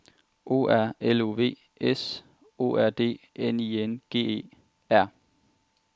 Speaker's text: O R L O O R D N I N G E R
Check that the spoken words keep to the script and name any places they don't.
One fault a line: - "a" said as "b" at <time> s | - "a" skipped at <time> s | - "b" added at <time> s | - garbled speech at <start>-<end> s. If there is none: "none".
- "V S" added at 1.3 s